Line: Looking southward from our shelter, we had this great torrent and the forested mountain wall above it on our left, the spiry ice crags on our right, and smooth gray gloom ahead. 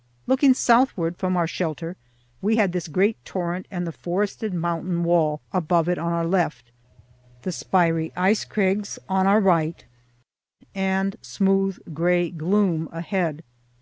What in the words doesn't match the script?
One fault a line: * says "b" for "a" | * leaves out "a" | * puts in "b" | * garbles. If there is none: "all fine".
all fine